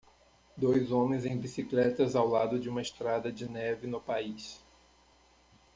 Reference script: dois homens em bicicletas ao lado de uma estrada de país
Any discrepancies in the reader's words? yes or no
yes